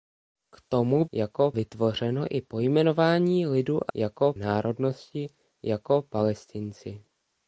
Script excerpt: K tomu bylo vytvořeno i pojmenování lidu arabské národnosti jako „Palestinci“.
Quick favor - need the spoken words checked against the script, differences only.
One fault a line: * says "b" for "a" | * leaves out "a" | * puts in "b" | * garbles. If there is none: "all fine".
* says "jako" for "bylo"
* says "jako" for "arabské"